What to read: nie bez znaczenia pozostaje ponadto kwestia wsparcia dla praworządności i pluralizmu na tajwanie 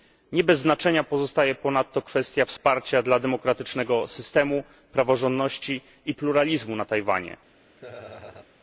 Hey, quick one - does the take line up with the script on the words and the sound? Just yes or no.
no